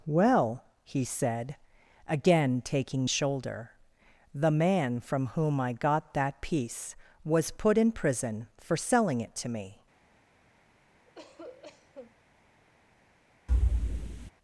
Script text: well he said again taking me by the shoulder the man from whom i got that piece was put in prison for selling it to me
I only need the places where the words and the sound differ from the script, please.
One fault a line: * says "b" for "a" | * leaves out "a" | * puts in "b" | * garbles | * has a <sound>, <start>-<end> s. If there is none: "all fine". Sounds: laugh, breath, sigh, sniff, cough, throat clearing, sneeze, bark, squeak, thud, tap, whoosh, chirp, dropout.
* leaves out "me by the"
* has a cough, 11.1-12.2 s
* has a thud, 13.5-14.3 s